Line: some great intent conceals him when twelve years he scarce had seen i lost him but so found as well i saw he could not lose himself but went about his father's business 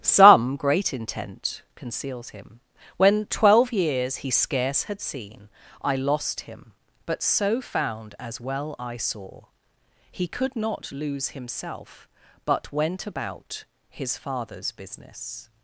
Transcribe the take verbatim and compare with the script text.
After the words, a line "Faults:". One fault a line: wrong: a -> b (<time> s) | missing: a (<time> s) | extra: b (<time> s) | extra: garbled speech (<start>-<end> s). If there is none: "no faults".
some great intent conceals him when twelve years he scarce had seen i lost him but so found as well i saw he could not lose himself but went about his father's business
Faults:
no faults